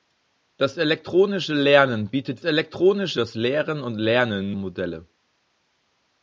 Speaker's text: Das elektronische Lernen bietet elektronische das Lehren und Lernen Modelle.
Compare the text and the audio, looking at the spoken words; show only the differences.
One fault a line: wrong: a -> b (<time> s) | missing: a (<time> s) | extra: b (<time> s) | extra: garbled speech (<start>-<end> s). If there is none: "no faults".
no faults